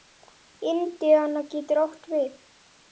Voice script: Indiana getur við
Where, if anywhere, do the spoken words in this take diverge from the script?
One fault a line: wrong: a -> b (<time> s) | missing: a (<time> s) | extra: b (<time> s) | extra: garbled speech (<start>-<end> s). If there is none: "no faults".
extra: átt (1.9 s)